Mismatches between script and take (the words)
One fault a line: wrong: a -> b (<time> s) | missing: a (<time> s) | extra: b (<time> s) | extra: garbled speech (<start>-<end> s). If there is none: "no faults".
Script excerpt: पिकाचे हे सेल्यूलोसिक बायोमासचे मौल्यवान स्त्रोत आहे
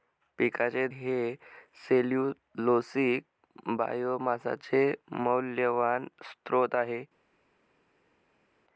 no faults